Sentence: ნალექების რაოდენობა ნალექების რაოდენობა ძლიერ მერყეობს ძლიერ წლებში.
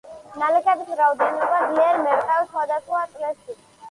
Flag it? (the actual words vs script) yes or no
yes